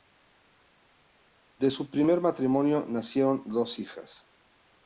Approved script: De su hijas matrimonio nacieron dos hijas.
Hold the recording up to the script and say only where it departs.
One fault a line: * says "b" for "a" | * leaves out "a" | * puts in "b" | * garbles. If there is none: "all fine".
* says "primer" for "hijas"